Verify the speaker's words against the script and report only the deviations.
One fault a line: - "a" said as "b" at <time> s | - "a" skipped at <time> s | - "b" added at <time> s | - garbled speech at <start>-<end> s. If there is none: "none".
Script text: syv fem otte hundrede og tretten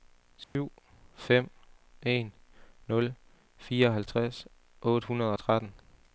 - "en nul fireoghalvtreds" added at 2.0 s